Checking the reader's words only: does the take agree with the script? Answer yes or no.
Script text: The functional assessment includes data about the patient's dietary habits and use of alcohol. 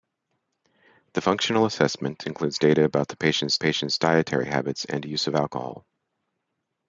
no